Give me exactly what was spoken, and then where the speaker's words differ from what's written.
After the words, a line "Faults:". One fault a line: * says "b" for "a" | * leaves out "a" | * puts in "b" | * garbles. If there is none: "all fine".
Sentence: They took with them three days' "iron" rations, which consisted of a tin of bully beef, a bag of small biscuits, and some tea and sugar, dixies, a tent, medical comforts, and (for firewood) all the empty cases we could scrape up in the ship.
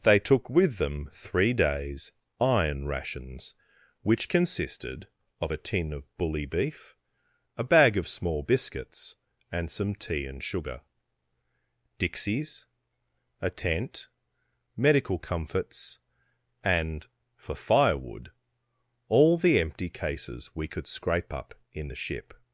They took with them three days' "iron" rations, which consisted of a tin of bully beef, a bag of small biscuits, and some tea and sugar, dixies, a tent, medical comforts, and (for firewood) all the empty cases we could scrape up in the ship.
Faults:
all fine